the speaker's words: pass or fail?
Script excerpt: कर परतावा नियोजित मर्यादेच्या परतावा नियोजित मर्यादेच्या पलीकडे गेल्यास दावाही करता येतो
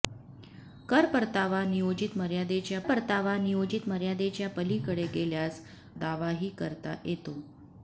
pass